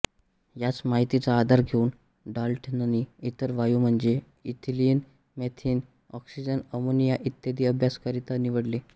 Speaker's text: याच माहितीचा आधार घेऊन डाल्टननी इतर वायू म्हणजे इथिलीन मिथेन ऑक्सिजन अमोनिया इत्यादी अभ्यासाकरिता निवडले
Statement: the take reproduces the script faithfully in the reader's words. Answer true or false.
true